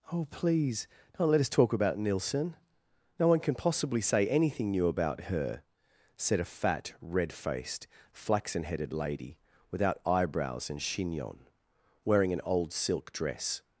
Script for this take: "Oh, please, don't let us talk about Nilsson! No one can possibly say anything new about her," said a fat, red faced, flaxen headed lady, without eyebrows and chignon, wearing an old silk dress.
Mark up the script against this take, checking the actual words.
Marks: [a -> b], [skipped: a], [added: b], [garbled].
"Oh, please, don't let us talk about Nilsson! No one can possibly say anything new about her," said a fat, red faced, flaxen headed lady, without eyebrows and chignon, wearing an old silk dress.